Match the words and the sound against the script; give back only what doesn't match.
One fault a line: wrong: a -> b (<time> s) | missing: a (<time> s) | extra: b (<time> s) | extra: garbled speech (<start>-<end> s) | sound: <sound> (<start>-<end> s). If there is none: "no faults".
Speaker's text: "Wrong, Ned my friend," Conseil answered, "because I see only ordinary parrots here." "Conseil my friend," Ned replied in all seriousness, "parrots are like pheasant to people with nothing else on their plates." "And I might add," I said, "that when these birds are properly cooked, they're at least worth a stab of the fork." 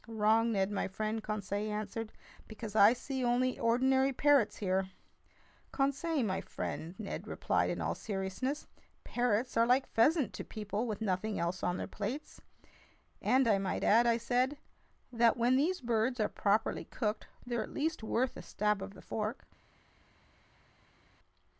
no faults